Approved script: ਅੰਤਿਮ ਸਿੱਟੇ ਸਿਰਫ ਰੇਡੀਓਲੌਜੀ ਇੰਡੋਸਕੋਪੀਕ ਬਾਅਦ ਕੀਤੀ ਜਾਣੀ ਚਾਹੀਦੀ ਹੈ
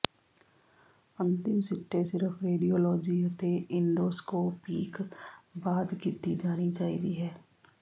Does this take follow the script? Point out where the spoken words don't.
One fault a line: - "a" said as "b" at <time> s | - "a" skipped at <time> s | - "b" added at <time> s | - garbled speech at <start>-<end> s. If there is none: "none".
- "ਅਤੇ" added at 3.3 s